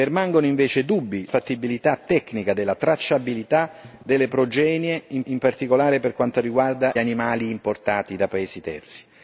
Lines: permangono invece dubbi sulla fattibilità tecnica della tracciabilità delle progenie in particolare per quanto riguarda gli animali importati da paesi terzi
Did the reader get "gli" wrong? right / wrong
wrong